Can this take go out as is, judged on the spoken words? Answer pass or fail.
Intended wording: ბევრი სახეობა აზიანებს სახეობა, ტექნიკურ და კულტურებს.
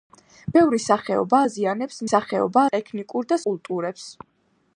pass